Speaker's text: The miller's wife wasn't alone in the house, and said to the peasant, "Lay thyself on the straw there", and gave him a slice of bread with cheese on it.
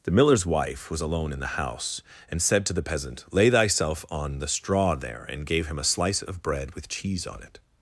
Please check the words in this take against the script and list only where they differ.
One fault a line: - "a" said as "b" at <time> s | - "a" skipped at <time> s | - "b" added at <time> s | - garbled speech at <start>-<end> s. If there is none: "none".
- "wasn't" said as "was" at 0.9 s